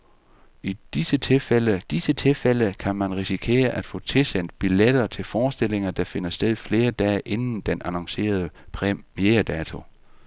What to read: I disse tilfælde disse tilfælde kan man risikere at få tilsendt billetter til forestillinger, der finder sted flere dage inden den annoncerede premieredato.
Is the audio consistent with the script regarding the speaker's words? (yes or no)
yes